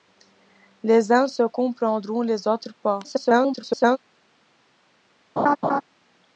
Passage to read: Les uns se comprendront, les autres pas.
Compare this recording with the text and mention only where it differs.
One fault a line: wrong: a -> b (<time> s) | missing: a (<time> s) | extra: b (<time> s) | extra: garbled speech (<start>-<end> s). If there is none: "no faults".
extra: garbled speech (3.0-4.0 s)